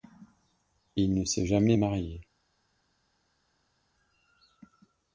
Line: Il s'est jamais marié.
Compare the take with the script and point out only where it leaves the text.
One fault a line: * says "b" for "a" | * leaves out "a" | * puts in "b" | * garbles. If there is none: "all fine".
* puts in "ne"